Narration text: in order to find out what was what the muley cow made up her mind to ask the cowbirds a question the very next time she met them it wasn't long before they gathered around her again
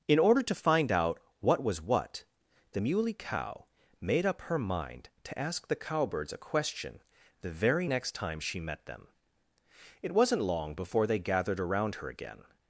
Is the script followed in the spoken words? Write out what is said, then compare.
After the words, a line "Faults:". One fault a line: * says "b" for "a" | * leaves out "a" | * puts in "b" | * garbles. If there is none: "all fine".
in order to find out what was what the muley cow made up her mind to ask the cowbirds a question the very next time she met them it wasn't long before they gathered around her again
Faults:
all fine